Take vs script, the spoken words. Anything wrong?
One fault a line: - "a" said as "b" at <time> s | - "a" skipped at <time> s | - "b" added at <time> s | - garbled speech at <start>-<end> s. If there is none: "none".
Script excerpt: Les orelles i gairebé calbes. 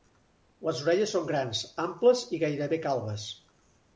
- "són grans amples" added at 1.1 s